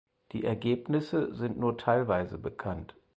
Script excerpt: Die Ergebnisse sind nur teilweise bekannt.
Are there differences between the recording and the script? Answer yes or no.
no